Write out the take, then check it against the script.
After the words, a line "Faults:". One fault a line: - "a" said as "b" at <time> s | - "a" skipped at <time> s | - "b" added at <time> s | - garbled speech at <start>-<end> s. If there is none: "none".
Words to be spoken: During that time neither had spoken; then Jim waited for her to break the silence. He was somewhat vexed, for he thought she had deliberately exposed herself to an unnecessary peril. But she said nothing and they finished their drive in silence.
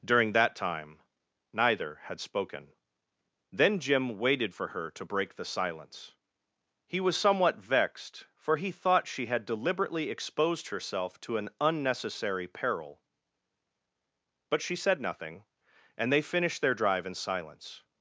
During that time neither had spoken; then Jim waited for her to break the silence. He was somewhat vexed, for he thought she had deliberately exposed herself to an unnecessary peril. But she said nothing and they finished their drive in silence.
Faults:
none